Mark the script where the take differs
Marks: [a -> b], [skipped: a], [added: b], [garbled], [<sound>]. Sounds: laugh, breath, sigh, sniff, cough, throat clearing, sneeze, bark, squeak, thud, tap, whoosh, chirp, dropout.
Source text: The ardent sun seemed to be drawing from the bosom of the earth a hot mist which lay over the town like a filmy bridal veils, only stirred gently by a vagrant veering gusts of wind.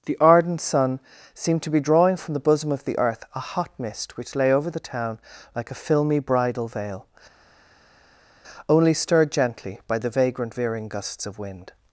The ardent sun seemed to be drawing from the bosom of the earth a hot mist which lay over the town like a filmy bridal [veils, -> veil] only stirred gently by [a -> the] vagrant veering gusts of wind.